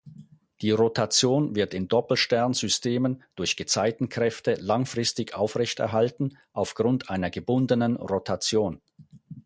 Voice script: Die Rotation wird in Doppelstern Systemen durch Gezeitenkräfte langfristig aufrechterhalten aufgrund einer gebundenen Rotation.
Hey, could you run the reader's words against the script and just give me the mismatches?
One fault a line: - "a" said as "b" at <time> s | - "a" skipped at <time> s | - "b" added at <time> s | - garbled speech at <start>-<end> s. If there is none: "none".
none